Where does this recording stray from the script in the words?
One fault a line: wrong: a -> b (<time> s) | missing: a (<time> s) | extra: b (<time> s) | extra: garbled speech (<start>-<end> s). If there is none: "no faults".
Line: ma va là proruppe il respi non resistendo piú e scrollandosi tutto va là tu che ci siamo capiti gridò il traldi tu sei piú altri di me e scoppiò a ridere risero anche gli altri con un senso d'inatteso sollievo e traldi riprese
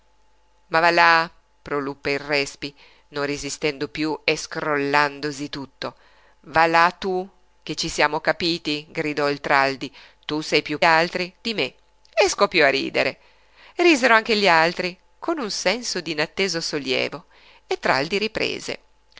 no faults